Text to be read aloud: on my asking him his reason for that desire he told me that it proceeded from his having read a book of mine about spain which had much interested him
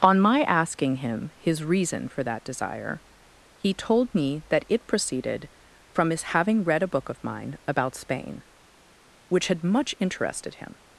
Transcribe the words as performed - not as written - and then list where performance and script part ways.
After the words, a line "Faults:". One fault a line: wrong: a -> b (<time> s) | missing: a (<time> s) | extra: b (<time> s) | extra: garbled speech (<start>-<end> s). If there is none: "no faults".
on my asking him his reason for that desire he told me that it proceeded from his having read a book of mine about spain which had much interested him
Faults:
no faults